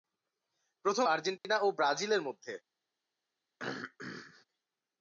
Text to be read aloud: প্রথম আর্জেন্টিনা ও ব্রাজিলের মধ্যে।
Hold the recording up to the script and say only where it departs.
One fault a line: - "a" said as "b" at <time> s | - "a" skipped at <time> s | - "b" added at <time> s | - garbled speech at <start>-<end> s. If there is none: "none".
none